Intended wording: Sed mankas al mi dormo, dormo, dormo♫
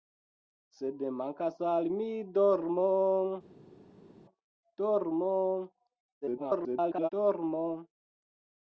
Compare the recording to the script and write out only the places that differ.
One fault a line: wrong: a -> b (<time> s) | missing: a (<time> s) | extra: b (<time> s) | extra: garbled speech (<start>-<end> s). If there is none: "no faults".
extra: garbled speech (6.2-7.1 s)